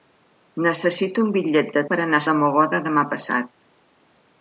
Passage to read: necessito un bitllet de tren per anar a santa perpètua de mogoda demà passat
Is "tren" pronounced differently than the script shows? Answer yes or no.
yes